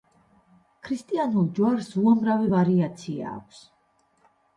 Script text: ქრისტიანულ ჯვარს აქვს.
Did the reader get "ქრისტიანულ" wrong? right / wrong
right